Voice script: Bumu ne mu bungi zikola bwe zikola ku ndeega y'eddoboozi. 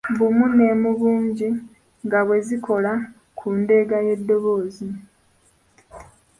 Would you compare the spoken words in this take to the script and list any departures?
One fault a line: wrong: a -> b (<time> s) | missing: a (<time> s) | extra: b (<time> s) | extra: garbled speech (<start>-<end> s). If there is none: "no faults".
wrong: zikola -> nga (2.0 s)